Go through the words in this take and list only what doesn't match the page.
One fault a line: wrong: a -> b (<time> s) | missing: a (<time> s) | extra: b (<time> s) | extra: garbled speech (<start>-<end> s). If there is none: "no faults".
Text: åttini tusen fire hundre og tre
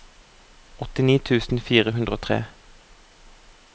no faults